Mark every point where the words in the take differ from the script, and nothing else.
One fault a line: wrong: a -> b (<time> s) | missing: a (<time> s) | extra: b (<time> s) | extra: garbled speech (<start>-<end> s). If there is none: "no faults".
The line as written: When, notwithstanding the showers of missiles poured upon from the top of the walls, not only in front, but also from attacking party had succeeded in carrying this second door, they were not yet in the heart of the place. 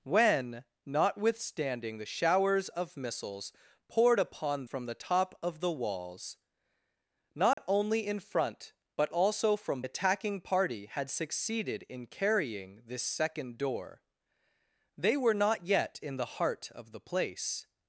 no faults